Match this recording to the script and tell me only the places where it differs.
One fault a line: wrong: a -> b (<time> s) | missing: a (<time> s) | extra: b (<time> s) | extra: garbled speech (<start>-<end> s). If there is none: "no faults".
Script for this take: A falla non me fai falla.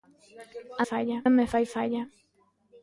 no faults